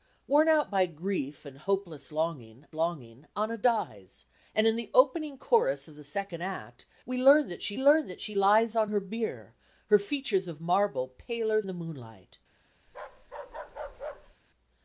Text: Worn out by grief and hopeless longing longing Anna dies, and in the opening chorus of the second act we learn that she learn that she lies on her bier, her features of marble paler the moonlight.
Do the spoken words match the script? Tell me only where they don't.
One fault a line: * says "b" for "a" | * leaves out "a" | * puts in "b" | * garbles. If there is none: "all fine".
all fine